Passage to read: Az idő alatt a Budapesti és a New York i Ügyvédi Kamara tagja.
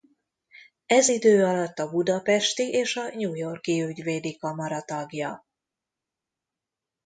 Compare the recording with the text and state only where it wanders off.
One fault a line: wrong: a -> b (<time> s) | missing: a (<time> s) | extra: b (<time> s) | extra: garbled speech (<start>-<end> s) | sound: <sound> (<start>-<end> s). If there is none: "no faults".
wrong: Az -> Ez (0.8 s)